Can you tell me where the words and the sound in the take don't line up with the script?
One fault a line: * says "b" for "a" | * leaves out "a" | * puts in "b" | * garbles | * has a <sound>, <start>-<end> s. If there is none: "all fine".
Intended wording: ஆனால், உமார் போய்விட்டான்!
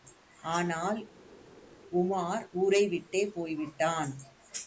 * puts in "ஊரைவிட்டே"